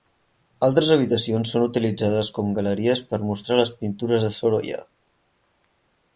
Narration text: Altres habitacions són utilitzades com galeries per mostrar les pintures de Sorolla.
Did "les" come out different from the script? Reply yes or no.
no